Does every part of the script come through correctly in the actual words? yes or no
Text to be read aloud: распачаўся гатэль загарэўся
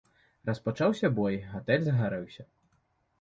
no